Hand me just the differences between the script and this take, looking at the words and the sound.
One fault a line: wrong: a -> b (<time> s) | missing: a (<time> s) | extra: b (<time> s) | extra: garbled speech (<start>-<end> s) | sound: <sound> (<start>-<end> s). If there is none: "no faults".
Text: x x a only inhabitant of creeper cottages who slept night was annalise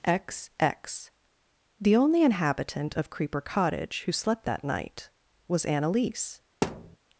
wrong: a -> the (1.8 s)
wrong: cottages -> cottage (3.4 s)
extra: that (4.4 s)
sound: thud (6.6-7.0 s)